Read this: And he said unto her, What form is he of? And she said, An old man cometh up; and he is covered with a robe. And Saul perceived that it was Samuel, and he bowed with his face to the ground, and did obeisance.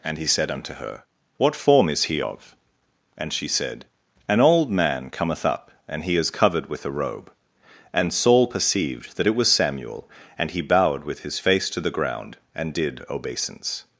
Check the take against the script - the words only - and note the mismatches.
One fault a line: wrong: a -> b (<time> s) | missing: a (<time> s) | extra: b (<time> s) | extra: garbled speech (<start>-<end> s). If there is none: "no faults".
no faults